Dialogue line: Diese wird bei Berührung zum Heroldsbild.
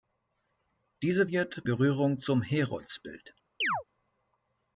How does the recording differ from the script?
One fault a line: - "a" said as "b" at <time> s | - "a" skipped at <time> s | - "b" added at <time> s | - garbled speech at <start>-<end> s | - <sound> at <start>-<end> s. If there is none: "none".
- "bei" skipped at 1.6 s
- chirp at 3.6-3.8 s